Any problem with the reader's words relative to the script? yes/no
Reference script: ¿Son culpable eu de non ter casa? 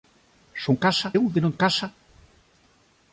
yes